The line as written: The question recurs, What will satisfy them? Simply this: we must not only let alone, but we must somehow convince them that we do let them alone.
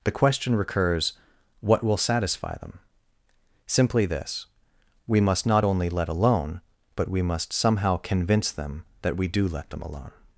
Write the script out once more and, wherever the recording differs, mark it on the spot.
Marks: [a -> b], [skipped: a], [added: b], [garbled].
The question recurs, What will satisfy them? Simply this: we must not only let alone, but we must somehow convince them that we do let them alone.